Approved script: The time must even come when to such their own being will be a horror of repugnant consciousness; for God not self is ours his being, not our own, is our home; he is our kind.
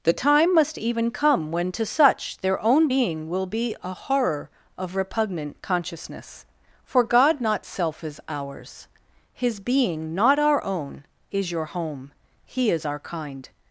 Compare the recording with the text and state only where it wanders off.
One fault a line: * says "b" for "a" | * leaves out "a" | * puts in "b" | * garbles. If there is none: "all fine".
* says "your" for "our"